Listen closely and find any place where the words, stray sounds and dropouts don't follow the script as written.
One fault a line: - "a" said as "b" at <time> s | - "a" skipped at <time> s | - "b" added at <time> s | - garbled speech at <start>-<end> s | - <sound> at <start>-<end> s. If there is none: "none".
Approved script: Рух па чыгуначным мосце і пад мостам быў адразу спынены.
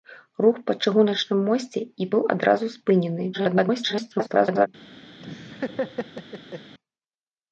- "пад мостам" skipped at 2.1 s
- garbled speech at 3.3-4.7 s
- laugh at 5.2-6.7 s